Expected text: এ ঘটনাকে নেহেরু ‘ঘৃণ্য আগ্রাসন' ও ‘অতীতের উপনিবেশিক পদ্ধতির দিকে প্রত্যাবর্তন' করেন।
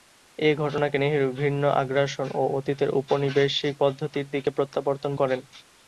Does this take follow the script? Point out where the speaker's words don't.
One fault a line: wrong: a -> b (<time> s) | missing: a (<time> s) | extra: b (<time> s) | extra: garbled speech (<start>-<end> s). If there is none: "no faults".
no faults